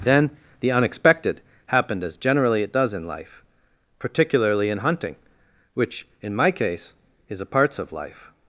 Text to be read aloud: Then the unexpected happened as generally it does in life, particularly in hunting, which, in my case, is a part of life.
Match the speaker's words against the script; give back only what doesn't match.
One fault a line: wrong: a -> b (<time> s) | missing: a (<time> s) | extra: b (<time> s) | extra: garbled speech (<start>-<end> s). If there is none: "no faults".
wrong: part -> parts (7.5 s)